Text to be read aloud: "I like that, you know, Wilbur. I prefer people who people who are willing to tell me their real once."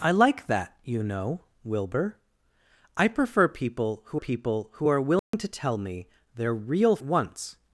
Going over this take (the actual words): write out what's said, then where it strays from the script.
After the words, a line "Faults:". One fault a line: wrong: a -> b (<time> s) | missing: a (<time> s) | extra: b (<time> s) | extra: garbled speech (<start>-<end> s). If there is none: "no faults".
"I like that, you know, Wilbur. I prefer people who people who are willing to tell me their real once."
Faults:
no faults